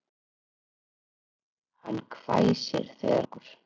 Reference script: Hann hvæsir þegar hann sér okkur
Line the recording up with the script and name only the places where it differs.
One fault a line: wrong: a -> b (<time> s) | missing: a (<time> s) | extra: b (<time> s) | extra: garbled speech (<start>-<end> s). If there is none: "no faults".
missing: hann sér (3.2 s)